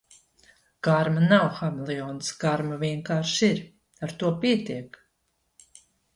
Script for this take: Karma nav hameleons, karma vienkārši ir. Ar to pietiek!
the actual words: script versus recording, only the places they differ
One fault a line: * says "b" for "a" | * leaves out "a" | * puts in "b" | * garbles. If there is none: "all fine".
all fine